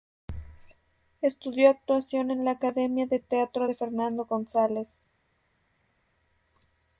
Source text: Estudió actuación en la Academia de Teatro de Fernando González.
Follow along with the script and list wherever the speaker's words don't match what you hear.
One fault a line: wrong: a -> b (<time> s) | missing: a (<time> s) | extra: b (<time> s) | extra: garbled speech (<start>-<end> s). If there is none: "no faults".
no faults